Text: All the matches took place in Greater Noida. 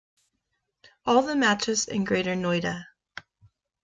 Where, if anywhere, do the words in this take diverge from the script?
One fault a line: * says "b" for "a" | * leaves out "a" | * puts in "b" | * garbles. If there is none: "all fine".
* leaves out "took place"